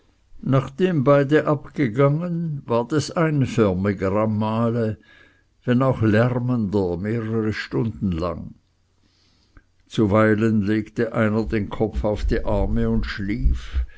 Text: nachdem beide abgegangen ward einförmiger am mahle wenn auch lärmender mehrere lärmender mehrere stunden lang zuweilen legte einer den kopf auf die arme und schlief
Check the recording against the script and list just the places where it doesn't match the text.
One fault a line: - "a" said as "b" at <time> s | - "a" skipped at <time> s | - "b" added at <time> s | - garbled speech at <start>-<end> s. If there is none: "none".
- "es" added at 2.9 s
- "lärmender mehrere" skipped at 7.5 s